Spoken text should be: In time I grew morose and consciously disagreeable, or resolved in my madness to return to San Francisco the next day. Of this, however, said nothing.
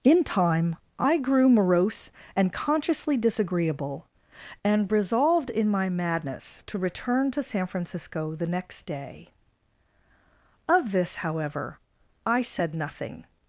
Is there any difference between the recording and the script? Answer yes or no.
yes